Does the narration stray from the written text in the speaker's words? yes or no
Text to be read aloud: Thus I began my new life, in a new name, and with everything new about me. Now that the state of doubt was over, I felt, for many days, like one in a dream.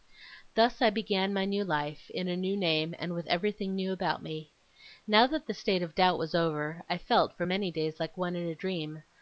no